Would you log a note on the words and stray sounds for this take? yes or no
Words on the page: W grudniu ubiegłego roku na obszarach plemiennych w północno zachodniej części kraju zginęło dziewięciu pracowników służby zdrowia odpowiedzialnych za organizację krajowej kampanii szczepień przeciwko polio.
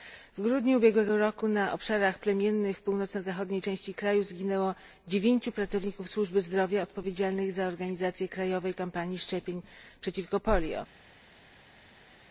no